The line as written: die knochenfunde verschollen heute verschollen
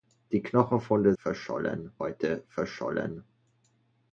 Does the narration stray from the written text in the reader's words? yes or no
no